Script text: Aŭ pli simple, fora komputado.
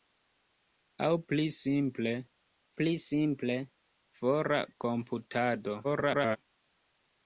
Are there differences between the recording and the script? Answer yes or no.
yes